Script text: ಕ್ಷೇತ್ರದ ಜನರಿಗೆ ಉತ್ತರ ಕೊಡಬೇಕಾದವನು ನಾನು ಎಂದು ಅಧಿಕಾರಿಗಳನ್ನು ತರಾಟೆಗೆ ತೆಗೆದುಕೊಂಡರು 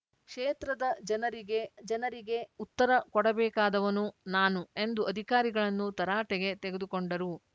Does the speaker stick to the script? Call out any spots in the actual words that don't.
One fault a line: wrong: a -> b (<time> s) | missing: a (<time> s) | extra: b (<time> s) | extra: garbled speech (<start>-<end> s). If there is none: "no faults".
extra: ಜನರಿಗೆ (1.8 s)